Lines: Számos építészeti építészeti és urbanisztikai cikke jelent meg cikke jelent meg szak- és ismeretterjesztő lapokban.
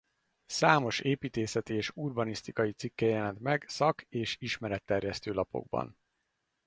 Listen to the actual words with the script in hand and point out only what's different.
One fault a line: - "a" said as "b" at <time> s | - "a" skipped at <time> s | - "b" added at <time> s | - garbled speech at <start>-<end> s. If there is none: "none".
- "építészeti" skipped at 1.7 s
- "cikke jelent meg" skipped at 3.7 s